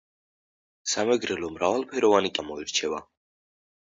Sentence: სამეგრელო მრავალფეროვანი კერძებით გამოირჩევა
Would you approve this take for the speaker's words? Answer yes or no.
no